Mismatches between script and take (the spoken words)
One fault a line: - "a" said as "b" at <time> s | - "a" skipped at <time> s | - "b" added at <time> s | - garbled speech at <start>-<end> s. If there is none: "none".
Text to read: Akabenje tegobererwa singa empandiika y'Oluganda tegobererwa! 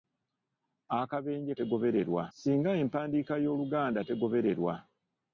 none